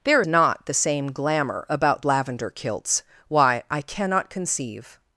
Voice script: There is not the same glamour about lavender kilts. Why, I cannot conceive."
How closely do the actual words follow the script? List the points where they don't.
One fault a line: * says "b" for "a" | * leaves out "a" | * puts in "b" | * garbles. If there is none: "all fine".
* leaves out "is"